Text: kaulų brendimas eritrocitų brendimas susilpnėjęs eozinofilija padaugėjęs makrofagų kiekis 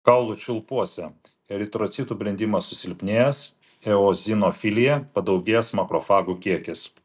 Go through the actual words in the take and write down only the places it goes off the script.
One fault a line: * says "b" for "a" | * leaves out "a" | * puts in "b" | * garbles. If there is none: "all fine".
* says "čiulpuose" for "brendimas"